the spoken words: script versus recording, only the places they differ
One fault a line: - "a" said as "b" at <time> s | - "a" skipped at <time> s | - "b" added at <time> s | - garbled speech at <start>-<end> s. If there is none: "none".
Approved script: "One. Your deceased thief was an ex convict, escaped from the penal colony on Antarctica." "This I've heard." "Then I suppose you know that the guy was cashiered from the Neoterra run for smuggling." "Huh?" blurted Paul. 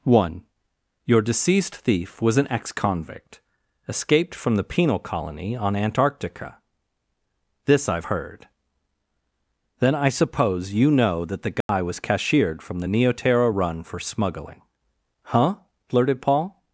none